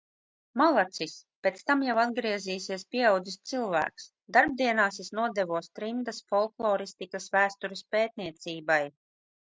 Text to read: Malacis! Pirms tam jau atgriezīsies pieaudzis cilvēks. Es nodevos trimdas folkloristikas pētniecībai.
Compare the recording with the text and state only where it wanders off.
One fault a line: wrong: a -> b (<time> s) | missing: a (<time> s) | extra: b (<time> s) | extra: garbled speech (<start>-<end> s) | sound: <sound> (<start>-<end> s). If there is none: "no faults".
wrong: Pirms -> Pēc (1.5 s)
extra: Darbdienās (4.4 s)
extra: vēstures (7.4 s)